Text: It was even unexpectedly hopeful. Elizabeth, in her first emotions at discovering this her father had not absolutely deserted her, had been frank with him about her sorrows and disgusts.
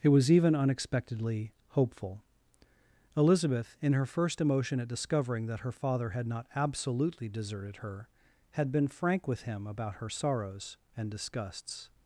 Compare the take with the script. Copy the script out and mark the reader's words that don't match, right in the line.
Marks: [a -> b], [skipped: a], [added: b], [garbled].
It was even unexpectedly hopeful. Elizabeth, in her first [emotions -> emotion] at discovering [this -> that] her father had not absolutely deserted her, had been frank with him about her sorrows and disgusts.